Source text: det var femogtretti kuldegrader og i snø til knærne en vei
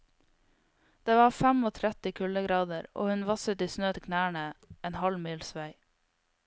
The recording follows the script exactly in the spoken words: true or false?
false